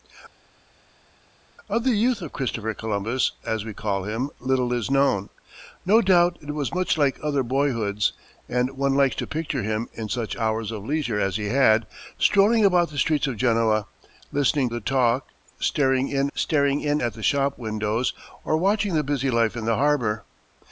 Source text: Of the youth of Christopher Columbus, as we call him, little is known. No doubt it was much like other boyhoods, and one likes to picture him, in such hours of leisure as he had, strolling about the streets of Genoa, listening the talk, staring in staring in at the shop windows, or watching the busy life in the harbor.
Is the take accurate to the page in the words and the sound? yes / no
yes